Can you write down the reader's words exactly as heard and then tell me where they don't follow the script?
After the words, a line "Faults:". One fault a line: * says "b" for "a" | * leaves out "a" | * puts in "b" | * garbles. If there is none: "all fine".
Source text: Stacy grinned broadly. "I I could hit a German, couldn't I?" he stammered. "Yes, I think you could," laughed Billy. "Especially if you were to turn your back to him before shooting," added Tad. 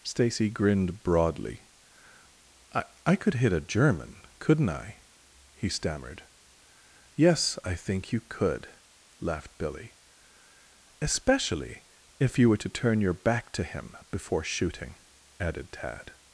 Stacy grinned broadly. "I I could hit a German, couldn't I?" he stammered. "Yes, I think you could," laughed Billy. "Especially if you were to turn your back to him before shooting," added Tad.
Faults:
all fine